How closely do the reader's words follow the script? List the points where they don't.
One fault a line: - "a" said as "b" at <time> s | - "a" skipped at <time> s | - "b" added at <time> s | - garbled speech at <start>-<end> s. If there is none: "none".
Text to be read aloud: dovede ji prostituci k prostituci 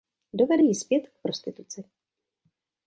- "prostituci" said as "zpět" at 0.7 s